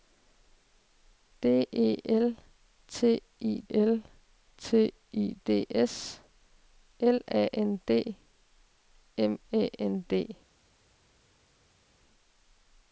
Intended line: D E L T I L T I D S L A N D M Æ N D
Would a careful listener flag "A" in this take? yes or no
no